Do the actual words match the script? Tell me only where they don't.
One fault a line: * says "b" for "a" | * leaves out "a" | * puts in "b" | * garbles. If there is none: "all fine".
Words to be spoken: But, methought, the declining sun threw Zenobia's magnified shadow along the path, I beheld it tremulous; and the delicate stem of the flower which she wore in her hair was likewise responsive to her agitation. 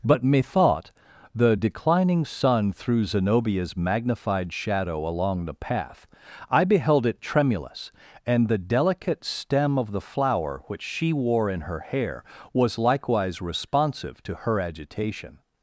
all fine